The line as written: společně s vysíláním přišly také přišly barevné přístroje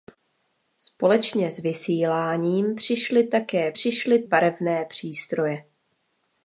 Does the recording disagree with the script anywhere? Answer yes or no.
no